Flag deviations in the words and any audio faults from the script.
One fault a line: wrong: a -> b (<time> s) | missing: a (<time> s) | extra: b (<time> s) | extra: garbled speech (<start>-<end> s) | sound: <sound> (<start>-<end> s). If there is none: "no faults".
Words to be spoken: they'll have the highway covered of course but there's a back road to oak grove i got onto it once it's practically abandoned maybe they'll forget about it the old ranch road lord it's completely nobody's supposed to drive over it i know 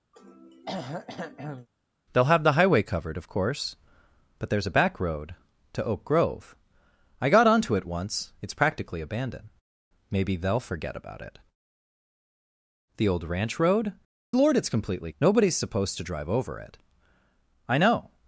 sound: throat clearing (0.1-1.7 s)